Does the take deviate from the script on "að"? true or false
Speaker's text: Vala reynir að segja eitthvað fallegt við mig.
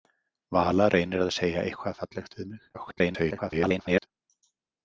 false